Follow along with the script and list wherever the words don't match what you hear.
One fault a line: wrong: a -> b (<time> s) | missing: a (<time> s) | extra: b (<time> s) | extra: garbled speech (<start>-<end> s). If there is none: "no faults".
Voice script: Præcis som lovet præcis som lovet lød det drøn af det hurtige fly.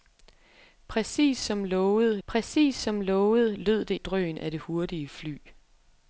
no faults